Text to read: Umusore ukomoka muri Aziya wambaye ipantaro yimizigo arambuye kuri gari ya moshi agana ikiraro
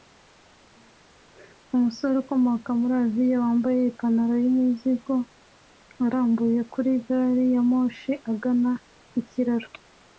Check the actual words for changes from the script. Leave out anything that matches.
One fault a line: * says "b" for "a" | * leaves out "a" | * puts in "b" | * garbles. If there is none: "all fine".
all fine